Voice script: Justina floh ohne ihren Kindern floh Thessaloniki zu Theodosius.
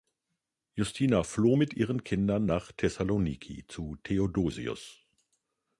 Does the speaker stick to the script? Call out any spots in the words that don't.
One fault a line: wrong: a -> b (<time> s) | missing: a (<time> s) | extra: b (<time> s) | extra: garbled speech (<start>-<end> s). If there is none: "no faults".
wrong: ohne -> mit (1.5 s)
wrong: floh -> nach (2.4 s)